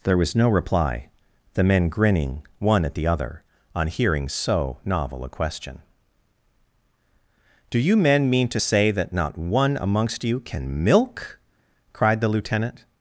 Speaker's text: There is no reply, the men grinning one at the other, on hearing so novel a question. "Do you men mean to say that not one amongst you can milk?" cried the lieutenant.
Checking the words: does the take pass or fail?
fail